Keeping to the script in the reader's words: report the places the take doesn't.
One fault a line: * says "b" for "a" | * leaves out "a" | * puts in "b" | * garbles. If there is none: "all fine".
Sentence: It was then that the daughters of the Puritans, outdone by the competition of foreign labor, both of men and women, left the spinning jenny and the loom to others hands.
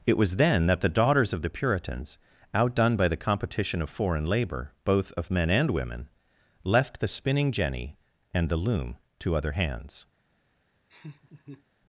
* says "other" for "others"